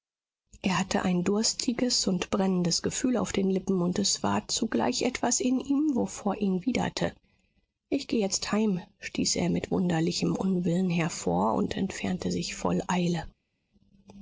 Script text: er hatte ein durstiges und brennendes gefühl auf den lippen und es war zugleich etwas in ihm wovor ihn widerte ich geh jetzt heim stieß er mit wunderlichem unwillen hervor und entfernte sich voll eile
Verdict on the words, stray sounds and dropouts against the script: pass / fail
pass